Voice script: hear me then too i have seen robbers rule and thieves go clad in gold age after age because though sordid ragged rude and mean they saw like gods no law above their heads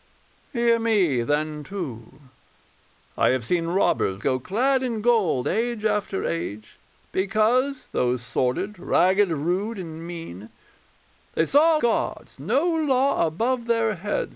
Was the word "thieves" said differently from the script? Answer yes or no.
yes